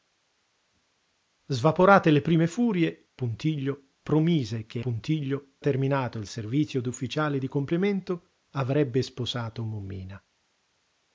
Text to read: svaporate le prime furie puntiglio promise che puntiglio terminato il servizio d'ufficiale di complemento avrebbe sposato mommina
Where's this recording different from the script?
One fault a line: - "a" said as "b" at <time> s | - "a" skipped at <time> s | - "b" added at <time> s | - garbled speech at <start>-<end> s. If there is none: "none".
none